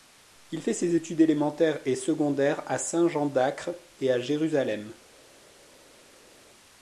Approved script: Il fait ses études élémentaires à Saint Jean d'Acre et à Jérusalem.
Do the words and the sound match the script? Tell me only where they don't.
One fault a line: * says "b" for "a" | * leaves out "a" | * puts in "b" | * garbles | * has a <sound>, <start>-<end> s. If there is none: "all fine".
* puts in "et secondaires"